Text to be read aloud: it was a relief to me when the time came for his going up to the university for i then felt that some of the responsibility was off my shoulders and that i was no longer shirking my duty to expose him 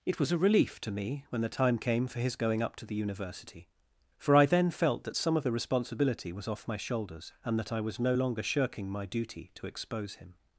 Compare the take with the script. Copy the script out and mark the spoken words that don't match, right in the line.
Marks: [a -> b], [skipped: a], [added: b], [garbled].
it was a relief to me when the time came for his going up to the university for i then felt that some of the responsibility was off my shoulders and that i was no longer shirking my duty to expose him